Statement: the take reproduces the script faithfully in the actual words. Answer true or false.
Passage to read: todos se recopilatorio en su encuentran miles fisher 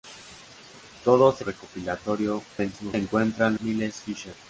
true